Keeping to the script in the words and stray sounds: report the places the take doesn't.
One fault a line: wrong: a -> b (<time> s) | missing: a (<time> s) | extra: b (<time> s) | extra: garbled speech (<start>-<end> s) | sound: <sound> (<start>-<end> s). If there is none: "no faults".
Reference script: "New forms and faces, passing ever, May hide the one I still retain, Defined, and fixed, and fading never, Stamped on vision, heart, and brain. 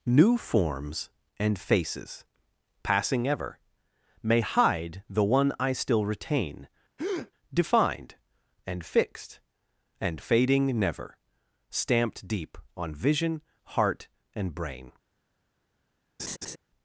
sound: breath (7.0-7.3 s)
extra: deep (12.3 s)
sound: laugh (16.2-16.6 s)